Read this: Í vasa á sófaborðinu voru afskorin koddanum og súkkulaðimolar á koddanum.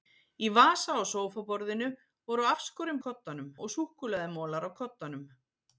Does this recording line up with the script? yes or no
yes